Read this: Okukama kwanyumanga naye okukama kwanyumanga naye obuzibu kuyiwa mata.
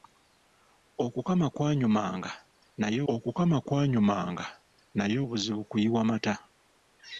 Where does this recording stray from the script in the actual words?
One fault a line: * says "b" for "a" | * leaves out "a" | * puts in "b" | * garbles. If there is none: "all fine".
all fine